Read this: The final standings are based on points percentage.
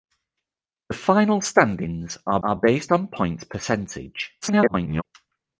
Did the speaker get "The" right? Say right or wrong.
right